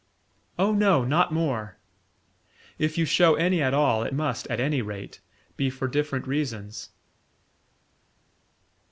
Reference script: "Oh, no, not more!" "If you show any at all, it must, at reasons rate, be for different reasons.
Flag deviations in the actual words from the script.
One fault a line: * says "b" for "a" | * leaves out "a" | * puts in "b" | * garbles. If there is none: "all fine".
* says "any" for "reasons"